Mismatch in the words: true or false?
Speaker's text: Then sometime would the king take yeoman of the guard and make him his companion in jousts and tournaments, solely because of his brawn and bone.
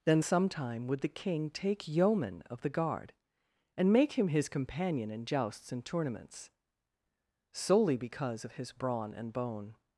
false